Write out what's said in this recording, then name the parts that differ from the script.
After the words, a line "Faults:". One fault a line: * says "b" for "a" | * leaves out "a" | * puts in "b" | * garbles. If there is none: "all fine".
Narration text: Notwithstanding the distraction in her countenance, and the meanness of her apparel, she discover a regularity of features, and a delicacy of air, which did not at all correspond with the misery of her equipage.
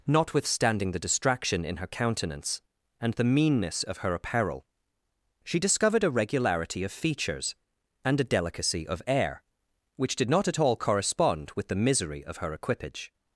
Notwithstanding the distraction in her countenance, and the meanness of her apparel, she discovered a regularity of features, and a delicacy of air, which did not at all correspond with the misery of her equipage.
Faults:
* says "discovered" for "discover"